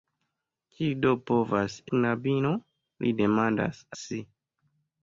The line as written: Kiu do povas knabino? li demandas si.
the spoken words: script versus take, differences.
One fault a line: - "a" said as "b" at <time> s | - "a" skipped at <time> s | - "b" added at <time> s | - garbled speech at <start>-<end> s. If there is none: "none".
none